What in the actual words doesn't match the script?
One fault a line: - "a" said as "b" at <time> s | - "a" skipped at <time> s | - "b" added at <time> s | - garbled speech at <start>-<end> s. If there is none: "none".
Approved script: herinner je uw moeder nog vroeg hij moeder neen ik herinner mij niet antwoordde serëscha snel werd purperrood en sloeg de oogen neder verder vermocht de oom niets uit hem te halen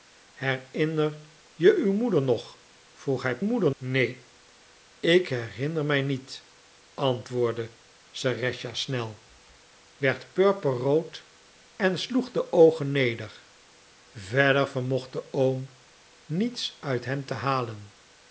none